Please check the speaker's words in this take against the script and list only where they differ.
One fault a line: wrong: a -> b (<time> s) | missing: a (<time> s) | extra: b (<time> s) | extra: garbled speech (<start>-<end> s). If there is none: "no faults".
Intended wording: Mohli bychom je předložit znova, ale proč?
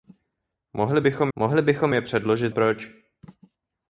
extra: mohli bychom (1.4 s)
missing: znova ale (2.5 s)